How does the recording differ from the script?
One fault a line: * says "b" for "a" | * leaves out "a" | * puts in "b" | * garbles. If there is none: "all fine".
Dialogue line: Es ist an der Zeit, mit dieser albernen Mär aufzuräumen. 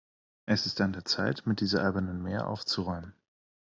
all fine